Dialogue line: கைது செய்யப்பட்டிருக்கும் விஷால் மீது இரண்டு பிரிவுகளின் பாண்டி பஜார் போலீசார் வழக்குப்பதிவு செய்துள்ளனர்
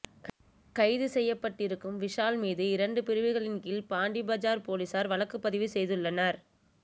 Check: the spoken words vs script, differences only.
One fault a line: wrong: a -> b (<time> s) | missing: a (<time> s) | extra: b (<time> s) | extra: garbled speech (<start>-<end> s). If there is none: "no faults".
extra: கீழ் (3.6 s)